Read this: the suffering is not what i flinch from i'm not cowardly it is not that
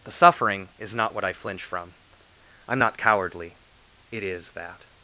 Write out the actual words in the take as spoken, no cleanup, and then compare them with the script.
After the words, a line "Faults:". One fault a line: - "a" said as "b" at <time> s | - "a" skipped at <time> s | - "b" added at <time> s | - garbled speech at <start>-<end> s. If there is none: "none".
the suffering is not what i flinch from i'm not cowardly it is that
Faults:
- "not" skipped at 4.5 s